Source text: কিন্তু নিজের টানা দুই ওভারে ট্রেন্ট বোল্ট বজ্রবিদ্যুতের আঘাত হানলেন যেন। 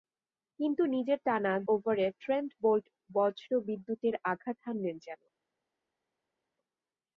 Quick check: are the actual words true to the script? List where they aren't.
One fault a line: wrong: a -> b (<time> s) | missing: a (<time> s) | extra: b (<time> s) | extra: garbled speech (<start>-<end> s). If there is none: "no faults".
missing: দুই (1.5 s)